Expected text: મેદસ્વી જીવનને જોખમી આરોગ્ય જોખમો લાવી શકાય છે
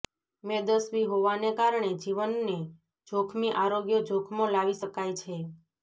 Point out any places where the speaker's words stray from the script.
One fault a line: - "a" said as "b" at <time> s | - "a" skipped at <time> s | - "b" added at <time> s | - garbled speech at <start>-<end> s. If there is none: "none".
- "હોવાને કારણે" added at 1.1 s